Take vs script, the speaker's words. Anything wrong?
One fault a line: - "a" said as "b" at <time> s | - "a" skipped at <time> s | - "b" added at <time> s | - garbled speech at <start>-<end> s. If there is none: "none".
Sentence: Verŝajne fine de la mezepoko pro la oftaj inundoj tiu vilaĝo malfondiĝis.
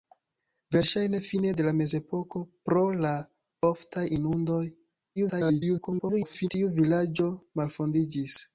- garbled speech at 5.2-6.5 s